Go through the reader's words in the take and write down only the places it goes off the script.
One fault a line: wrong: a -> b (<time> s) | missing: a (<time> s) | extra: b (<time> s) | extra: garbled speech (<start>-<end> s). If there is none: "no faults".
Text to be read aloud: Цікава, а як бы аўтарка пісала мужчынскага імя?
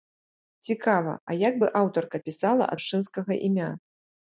no faults